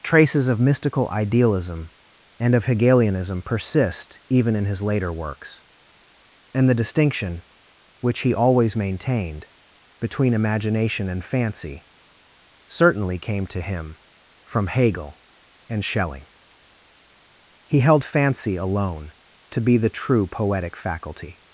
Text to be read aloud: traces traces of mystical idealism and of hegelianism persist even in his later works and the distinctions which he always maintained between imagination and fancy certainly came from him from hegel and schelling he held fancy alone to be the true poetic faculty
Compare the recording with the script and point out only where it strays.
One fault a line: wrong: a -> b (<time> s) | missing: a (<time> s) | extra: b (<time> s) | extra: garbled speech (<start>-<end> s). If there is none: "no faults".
missing: traces (0.5 s)
wrong: distinctions -> distinction (6.8 s)
wrong: from -> to (13.4 s)